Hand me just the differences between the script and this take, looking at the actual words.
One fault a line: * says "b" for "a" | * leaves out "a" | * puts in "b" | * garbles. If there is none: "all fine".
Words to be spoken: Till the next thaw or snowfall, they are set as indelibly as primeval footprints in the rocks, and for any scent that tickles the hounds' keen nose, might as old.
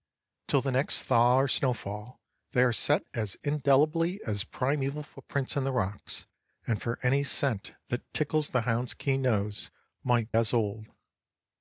all fine